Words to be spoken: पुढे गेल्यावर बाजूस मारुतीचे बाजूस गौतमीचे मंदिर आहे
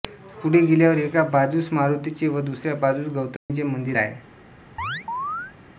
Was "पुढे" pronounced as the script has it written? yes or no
yes